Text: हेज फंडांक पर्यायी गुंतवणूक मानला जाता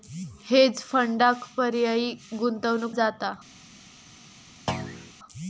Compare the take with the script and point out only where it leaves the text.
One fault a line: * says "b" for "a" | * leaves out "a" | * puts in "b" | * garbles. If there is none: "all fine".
* leaves out "मानला"